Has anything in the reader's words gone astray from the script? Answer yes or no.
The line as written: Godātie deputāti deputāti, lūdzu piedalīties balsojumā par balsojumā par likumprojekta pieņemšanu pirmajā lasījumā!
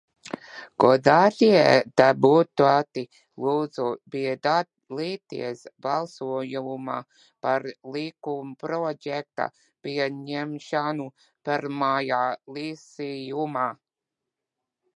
yes